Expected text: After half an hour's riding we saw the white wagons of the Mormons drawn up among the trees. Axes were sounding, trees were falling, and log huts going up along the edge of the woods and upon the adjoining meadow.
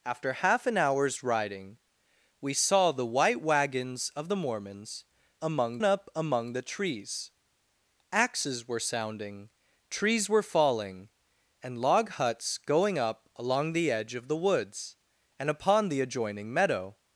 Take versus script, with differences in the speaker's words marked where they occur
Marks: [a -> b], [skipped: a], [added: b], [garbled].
After half an hour's riding we saw the white wagons of the Mormons [drawn -> among] up among the trees. Axes were sounding, trees were falling, and log huts going up along the edge of the woods and upon the adjoining meadow.